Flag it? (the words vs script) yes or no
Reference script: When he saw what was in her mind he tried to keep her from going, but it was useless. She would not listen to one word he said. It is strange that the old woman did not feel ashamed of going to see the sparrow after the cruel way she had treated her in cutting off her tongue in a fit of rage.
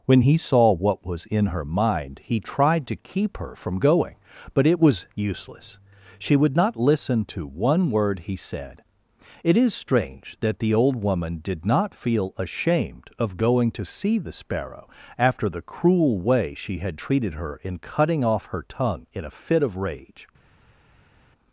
no